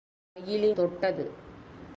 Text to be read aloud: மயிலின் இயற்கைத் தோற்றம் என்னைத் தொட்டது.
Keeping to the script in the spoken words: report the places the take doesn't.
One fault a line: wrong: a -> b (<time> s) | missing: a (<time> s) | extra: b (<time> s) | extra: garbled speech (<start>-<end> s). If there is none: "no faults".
missing: இயற்கைத் தோற்றம் என்னைத் (0.8 s)